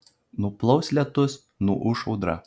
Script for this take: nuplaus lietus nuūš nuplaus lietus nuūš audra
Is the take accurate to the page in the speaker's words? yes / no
no